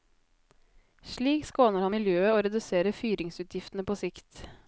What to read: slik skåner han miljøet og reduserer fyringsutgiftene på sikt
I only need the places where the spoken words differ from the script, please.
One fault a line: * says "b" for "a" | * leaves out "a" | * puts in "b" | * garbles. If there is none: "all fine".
all fine